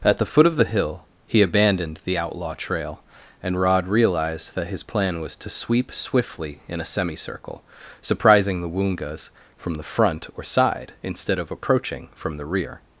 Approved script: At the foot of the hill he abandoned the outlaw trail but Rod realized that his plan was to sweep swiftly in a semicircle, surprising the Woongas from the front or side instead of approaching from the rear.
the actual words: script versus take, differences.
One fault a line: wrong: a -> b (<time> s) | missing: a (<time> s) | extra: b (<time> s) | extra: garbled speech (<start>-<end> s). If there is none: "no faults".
wrong: but -> and (3.4 s)